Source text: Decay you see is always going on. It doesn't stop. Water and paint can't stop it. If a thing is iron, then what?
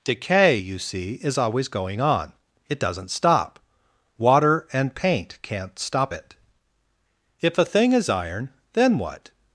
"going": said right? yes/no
yes